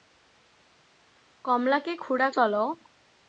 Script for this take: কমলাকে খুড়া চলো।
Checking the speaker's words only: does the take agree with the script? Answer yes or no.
yes